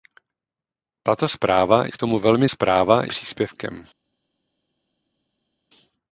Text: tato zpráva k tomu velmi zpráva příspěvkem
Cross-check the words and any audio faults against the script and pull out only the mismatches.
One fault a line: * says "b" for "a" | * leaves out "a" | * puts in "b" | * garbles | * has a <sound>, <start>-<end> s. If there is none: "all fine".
all fine